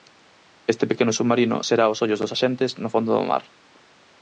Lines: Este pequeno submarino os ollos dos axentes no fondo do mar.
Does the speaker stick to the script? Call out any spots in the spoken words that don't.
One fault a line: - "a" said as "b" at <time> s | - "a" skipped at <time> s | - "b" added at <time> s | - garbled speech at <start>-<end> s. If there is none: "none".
- "será" added at 1.7 s